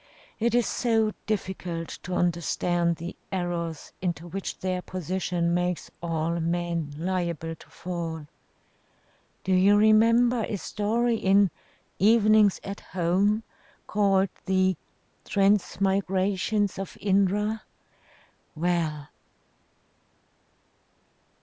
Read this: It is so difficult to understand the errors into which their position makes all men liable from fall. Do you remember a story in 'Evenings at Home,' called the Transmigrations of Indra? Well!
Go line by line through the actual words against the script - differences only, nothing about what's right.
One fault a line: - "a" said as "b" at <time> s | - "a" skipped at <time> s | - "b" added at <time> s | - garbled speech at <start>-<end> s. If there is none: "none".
- "from" said as "to" at 7.6 s